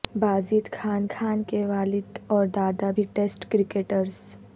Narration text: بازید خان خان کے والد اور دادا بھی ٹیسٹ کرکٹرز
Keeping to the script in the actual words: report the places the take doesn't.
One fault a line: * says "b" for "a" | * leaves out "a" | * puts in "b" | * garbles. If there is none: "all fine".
all fine